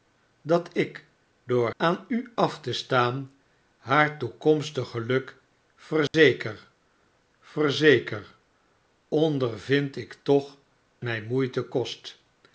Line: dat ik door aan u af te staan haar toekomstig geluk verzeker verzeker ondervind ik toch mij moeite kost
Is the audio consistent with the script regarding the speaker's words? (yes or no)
yes